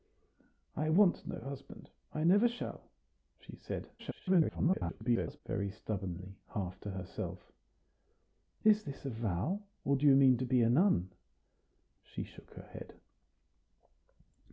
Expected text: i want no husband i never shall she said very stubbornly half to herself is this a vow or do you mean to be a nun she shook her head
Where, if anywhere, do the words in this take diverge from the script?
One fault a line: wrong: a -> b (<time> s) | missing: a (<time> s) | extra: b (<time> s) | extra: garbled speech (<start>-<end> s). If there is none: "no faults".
extra: garbled speech (4.0-5.4 s)